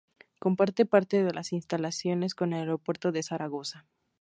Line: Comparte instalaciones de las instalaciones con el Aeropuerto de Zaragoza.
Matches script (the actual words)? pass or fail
fail